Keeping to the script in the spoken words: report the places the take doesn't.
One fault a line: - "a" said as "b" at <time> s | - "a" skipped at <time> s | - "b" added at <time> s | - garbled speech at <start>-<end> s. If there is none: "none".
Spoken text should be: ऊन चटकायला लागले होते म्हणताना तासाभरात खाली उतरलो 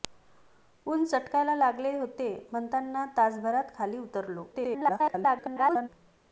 - garbled speech at 4.5-5.9 s